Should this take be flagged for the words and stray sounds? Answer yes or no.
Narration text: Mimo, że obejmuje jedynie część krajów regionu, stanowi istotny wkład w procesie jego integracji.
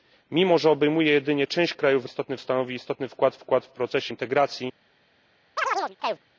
yes